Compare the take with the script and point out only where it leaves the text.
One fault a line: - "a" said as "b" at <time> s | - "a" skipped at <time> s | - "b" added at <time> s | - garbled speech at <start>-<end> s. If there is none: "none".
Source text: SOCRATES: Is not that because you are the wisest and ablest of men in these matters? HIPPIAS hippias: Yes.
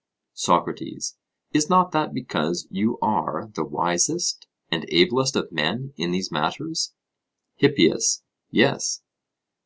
- "hippias" skipped at 8.2 s